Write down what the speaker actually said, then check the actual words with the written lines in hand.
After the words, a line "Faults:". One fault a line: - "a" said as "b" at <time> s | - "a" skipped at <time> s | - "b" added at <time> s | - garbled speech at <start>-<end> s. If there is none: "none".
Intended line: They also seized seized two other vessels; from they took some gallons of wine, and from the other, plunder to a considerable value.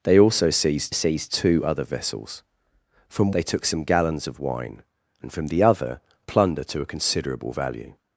They also seized seized two other vessels; from they took some gallons of wine, and from the other, plunder to a considerable value.
Faults:
none